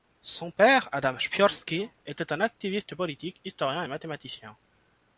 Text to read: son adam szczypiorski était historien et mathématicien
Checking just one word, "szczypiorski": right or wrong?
right